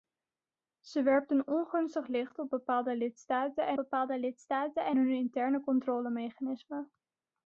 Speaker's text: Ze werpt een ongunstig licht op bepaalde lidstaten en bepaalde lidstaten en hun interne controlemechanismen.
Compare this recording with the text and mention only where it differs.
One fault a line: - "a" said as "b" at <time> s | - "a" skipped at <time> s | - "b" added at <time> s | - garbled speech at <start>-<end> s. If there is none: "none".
none